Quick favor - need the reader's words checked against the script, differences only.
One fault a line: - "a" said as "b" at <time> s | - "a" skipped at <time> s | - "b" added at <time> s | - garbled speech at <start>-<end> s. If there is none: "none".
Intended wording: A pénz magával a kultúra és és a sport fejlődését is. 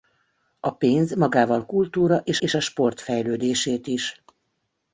none